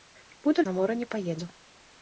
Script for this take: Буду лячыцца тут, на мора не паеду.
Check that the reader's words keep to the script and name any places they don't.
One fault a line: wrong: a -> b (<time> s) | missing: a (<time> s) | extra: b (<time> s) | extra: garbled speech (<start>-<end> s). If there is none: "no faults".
missing: лячыцца тут (0.7 s)